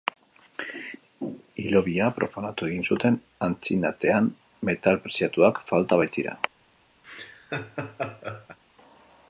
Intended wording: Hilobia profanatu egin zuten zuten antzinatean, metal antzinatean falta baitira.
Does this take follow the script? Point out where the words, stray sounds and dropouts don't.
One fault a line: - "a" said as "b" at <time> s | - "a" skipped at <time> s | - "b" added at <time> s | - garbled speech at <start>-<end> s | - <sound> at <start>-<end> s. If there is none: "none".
- "zuten" skipped at 3.2 s
- "antzinatean" said as "preziatuak" at 5.0 s
- laugh at 7.0-8.6 s